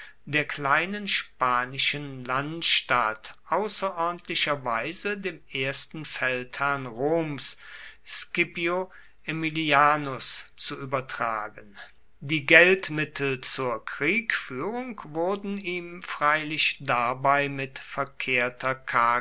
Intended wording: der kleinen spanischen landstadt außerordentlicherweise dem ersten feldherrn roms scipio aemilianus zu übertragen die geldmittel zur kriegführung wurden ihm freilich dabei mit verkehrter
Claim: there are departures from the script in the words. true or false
false